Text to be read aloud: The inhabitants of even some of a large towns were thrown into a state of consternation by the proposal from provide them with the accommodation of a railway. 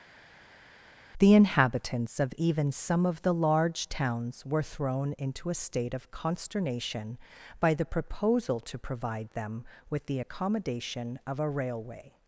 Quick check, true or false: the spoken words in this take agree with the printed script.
false